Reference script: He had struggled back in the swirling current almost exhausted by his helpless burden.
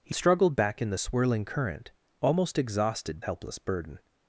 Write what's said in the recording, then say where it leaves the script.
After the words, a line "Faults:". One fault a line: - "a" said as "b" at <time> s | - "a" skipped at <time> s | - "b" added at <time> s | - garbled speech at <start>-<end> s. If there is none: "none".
He struggled back in the swirling current almost exhausted helpless burden.
Faults:
- "had" skipped at 0.1 s
- "by his" skipped at 3.2 s